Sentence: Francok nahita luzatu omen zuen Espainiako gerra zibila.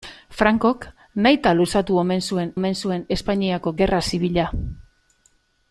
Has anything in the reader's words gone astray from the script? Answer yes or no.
yes